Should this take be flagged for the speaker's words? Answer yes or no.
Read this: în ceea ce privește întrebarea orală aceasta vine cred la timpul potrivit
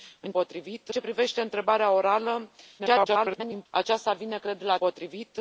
yes